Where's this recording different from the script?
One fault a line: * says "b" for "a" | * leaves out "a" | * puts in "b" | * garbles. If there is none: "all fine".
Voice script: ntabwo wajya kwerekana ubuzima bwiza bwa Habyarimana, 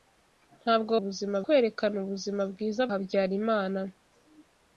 * says "ubuzima" for "wajya"
* leaves out "bwa"